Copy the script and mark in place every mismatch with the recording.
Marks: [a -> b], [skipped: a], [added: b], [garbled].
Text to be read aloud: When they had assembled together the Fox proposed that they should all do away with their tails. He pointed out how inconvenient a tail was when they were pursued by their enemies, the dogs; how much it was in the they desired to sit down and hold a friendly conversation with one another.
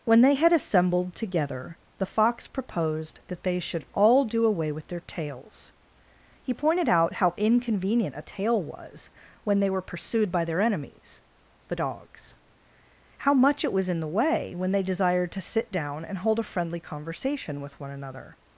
When they had assembled together the Fox proposed that they should all do away with their tails. He pointed out how inconvenient a tail was when they were pursued by their enemies, the dogs; how much it was in the [added: way when] they desired to sit down and hold a friendly conversation with one another.